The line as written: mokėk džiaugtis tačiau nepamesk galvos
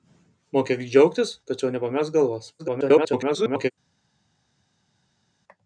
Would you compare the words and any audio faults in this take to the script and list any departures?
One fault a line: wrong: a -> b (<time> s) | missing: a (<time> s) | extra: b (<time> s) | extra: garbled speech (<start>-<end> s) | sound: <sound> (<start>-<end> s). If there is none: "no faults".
extra: garbled speech (2.6-3.7 s)